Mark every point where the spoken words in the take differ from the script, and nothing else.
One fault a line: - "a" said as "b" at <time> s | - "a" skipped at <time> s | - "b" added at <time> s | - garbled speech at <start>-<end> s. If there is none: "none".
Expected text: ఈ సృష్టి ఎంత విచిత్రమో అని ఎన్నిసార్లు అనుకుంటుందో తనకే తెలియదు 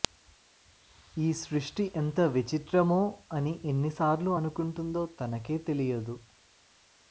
none